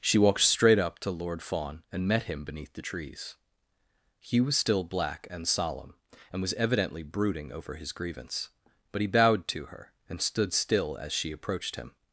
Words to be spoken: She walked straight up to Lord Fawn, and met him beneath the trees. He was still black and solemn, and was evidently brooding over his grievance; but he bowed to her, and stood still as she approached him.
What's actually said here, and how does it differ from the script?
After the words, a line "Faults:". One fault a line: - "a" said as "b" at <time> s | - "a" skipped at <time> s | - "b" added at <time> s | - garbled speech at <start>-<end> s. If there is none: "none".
She walked straight up to Lord Fawn, and met him beneath the trees. He was still black and solemn, and was evidently brooding over his grievance; but he bowed to her, and stood still as she approached him.
Faults:
none